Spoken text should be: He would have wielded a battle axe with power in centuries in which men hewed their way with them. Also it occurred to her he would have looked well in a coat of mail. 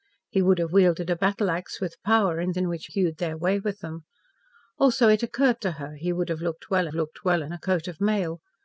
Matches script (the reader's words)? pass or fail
fail